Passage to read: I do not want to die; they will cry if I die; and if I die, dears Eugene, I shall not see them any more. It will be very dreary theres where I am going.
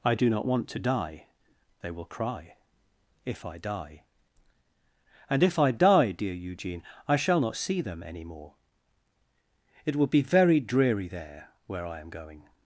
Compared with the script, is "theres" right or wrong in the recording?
wrong